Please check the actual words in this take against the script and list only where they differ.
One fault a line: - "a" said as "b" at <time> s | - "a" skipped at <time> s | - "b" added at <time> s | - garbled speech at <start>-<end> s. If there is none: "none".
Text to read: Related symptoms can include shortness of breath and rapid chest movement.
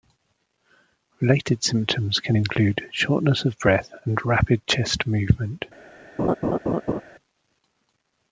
none